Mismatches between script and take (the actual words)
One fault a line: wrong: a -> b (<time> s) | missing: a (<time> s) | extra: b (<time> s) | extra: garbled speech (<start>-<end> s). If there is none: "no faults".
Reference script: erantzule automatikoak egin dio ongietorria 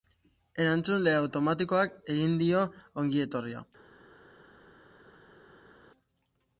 no faults